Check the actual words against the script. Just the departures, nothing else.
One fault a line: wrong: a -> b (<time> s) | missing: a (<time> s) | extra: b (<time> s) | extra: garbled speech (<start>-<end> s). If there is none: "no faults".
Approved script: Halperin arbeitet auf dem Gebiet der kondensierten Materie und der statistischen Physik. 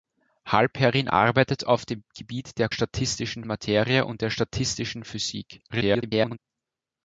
wrong: kondensierten -> statistischen (2.7 s)
extra: garbled speech (5.7-6.4 s)